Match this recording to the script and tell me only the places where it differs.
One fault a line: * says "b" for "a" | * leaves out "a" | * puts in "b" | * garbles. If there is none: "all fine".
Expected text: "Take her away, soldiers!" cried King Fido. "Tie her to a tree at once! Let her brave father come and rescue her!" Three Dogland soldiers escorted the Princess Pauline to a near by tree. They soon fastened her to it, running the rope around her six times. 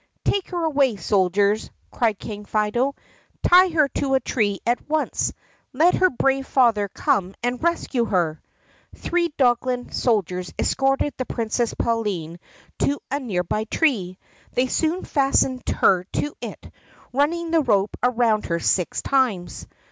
all fine